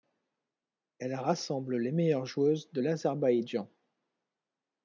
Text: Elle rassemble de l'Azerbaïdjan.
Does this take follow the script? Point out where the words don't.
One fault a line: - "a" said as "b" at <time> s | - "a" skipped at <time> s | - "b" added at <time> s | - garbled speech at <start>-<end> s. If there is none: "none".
- "les meilleures joueuses" added at 1.8 s